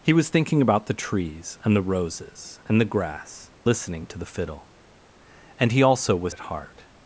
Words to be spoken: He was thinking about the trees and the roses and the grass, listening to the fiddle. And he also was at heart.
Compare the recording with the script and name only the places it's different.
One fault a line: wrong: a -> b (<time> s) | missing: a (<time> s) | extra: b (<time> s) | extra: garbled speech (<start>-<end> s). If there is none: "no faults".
no faults